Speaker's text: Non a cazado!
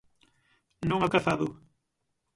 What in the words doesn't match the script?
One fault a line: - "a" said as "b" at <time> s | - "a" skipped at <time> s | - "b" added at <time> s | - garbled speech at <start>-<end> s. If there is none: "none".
none